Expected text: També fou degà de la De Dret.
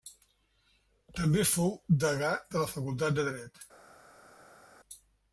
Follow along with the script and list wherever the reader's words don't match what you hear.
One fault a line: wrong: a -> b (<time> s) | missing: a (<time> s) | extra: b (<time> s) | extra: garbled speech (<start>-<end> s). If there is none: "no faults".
extra: Facultat (2.7 s)